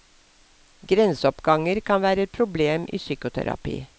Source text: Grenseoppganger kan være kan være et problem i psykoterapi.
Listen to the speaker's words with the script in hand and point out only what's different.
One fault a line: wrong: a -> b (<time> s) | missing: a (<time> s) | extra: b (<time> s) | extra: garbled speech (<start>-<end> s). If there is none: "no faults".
missing: kan være (2.2 s)